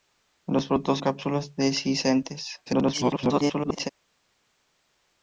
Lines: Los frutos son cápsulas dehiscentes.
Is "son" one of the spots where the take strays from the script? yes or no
yes